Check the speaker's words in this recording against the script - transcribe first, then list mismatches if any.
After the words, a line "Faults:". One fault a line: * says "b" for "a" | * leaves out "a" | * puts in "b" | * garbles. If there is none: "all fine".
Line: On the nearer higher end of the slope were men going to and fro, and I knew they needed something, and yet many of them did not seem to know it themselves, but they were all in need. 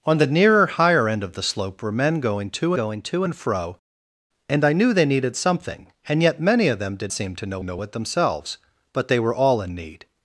On the nearer higher end of the slope were men going to going to and fro, and I knew they needed something, and yet many of them did seem to know know it themselves, but they were all in need.
Faults:
* puts in "going to"
* leaves out "not"
* puts in "know"